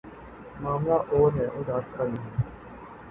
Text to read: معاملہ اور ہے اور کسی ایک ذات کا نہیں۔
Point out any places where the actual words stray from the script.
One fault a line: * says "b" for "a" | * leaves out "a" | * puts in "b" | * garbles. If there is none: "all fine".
* leaves out "کسی ایک"